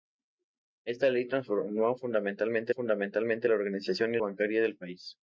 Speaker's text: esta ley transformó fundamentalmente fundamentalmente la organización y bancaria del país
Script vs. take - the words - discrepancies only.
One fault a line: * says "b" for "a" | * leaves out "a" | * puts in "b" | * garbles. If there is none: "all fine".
all fine